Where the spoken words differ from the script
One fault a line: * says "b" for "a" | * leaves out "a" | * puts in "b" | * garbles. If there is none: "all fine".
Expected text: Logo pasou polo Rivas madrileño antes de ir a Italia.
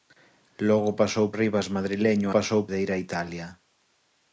* leaves out "polo"
* says "pasou" for "antes"